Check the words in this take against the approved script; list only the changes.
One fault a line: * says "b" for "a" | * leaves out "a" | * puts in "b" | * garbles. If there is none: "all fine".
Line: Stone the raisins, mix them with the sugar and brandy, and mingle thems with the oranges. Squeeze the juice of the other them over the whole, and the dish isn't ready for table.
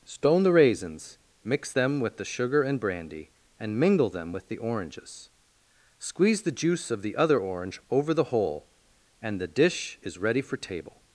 * says "them" for "thems"
* says "orange" for "them"
* says "is" for "isn't"